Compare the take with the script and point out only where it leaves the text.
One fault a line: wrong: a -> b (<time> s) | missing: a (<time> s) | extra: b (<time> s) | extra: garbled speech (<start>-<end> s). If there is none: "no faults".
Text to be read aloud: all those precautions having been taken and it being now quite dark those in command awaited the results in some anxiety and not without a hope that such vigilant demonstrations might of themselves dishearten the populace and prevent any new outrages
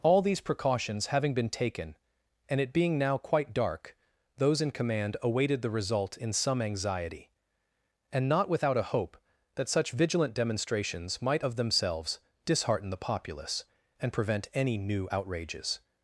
wrong: those -> these (0.2 s)
wrong: results -> result (5.7 s)